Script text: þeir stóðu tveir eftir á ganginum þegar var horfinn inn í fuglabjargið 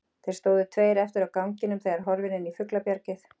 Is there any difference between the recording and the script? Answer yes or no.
no